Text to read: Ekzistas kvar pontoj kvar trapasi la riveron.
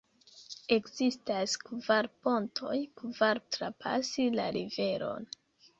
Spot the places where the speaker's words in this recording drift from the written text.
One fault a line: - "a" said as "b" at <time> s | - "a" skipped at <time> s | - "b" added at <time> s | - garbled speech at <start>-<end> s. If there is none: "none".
none